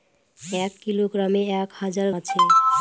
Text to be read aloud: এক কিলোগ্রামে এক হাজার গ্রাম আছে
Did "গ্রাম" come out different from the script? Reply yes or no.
yes